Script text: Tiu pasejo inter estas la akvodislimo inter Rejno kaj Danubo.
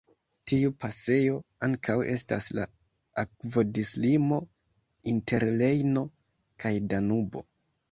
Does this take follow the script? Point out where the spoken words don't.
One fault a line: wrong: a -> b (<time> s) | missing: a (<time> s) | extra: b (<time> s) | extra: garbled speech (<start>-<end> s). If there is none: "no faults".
wrong: inter -> ankaŭ (1.7 s)